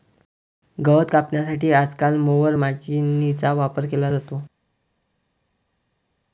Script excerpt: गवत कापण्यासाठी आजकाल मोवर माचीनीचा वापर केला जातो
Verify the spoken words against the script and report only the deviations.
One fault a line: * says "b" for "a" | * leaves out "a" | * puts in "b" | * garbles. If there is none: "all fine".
all fine